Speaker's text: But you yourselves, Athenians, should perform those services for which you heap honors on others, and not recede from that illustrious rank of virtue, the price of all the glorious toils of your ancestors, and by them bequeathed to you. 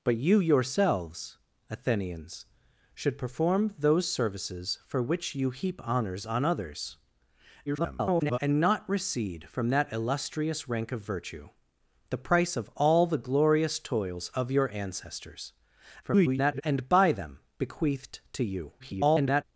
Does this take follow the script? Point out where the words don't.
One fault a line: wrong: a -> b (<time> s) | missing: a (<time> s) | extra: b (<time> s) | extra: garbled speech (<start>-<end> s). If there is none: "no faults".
extra: garbled speech (7.7-8.4 s)
extra: garbled speech (16.0-16.6 s)
extra: garbled speech (18.8-19.4 s)